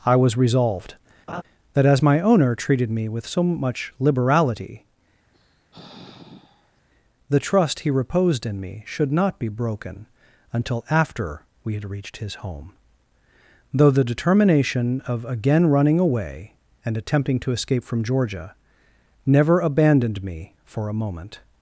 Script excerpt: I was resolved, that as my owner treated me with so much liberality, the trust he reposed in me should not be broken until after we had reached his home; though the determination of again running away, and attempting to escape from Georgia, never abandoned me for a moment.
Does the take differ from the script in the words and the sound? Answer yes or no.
yes